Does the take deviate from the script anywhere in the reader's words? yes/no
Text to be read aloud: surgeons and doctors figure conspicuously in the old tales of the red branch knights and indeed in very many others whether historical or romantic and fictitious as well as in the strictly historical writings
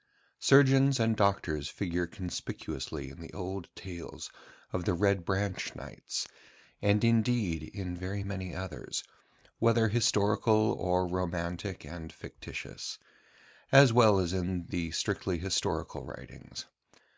no